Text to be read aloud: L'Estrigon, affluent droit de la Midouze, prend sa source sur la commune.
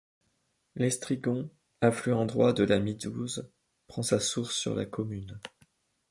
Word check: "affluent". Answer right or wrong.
right